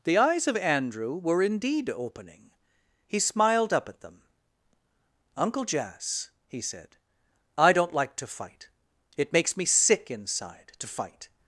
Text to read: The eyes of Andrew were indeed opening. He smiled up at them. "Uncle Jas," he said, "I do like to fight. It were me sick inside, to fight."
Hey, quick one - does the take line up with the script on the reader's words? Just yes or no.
no